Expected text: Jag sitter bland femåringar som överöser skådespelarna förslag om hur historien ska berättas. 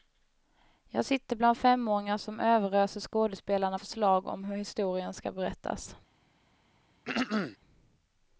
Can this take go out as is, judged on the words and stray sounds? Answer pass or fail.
fail